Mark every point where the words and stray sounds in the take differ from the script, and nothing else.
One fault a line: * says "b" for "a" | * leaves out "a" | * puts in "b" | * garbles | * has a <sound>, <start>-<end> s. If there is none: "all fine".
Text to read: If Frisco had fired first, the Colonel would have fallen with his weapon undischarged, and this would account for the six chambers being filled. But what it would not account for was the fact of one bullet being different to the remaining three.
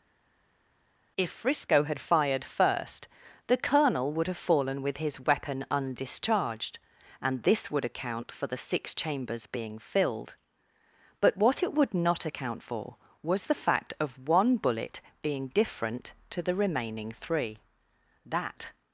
* puts in "That"